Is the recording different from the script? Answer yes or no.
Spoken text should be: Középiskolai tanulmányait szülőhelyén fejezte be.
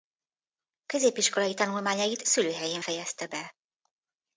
no